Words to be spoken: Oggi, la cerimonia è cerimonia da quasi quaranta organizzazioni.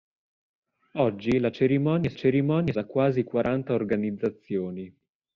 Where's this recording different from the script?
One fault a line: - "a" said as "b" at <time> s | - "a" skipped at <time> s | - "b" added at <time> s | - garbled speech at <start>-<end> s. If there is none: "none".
none